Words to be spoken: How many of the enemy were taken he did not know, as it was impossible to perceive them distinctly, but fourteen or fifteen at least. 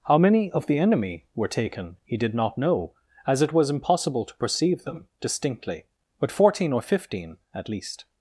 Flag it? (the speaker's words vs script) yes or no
no